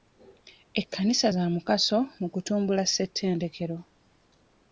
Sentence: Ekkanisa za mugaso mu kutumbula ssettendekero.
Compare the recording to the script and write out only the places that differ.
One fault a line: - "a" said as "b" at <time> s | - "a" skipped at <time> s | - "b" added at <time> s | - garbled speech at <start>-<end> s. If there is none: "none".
none